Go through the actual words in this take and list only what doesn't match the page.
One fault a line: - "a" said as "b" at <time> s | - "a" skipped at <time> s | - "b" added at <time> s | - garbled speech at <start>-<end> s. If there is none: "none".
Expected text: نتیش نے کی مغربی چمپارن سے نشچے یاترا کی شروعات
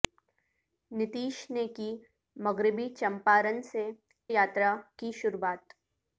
- "نشچے" skipped at 3.8 s